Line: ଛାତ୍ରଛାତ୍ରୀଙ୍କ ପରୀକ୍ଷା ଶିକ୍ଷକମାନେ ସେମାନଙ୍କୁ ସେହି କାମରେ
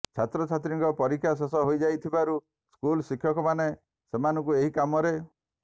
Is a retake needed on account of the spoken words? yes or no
yes